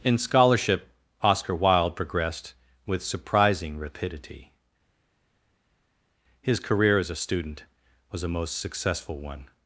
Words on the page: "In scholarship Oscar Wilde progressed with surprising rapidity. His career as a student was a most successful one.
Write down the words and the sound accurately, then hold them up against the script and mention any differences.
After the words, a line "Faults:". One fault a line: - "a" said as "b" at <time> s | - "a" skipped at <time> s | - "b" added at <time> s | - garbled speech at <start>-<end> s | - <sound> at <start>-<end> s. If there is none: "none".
"In scholarship Oscar Wilde progressed with surprising rapidity. His career as a student was a most successful one.
Faults:
none